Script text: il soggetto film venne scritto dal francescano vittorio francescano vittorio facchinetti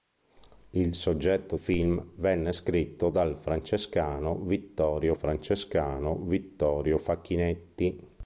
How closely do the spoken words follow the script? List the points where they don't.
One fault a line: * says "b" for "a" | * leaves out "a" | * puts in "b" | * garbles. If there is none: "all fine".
all fine